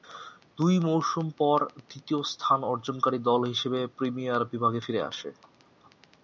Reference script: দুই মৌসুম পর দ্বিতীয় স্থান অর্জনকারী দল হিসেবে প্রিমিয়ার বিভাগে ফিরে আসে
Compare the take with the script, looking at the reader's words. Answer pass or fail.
pass